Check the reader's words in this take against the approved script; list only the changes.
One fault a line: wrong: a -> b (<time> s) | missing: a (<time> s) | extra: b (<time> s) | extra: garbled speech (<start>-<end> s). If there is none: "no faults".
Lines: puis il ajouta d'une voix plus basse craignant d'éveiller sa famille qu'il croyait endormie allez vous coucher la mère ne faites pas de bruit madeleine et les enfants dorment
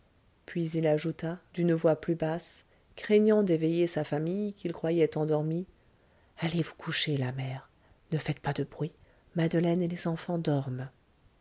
no faults